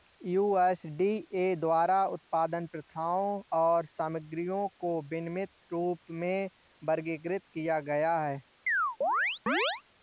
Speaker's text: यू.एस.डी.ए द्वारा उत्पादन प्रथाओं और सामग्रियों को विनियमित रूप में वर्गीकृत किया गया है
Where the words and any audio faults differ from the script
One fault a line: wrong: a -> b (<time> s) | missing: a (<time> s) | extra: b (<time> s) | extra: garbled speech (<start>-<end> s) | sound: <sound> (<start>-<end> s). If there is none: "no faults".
sound: chirp (8.7-9.8 s)